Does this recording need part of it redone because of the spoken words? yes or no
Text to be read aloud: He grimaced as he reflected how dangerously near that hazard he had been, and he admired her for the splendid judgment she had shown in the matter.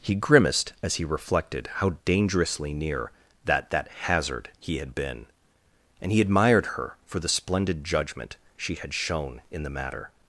yes